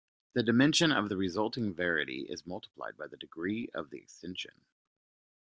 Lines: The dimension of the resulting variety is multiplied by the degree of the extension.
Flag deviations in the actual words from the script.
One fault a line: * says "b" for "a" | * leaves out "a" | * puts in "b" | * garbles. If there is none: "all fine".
all fine